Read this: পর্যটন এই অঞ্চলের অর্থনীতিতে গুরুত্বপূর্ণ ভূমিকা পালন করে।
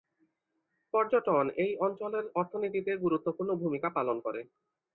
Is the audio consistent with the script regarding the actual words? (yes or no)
yes